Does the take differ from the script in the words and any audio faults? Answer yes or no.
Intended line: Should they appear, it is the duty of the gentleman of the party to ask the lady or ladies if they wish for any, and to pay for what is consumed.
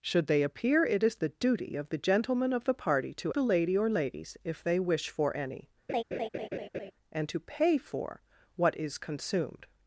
yes